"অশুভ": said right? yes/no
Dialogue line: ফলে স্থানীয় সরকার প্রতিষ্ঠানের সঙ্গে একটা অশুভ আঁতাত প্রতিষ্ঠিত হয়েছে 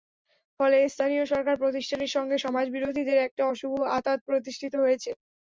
yes